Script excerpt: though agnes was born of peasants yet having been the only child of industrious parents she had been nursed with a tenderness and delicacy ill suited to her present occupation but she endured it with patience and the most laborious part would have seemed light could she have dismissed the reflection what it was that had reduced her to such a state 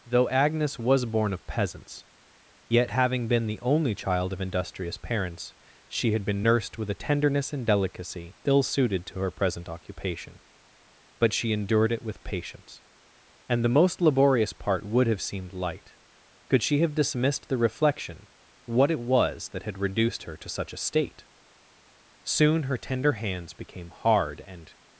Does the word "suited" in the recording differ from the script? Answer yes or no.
no